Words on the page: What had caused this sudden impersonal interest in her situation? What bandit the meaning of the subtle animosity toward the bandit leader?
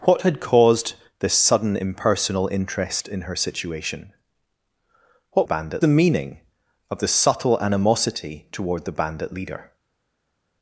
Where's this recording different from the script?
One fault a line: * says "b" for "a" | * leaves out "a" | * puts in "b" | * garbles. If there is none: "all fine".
all fine